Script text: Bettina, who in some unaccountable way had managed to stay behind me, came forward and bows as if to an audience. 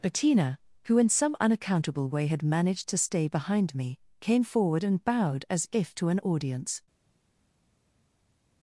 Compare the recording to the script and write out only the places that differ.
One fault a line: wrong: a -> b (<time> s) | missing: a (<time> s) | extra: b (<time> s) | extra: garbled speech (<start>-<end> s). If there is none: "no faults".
wrong: bows -> bowed (5.0 s)